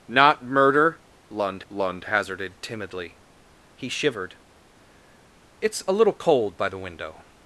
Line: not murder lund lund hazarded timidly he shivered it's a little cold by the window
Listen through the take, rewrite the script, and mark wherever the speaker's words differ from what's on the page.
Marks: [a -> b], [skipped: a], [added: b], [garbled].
not murder lund lund hazarded timidly he shivered it's a little cold by the window